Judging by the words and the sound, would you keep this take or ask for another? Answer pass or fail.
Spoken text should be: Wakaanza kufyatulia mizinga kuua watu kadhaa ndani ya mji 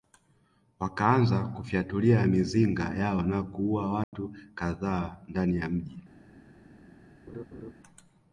fail